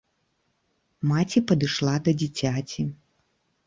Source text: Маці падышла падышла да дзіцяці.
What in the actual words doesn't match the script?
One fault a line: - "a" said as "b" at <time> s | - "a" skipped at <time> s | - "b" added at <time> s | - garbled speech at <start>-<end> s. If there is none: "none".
- "падышла" skipped at 1.9 s